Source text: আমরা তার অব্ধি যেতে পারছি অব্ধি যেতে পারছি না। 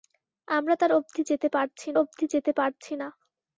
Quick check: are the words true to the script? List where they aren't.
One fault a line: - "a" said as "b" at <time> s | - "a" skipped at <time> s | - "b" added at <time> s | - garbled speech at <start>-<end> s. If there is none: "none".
none